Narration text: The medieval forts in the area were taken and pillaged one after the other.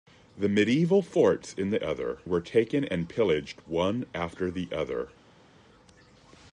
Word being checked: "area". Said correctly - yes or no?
no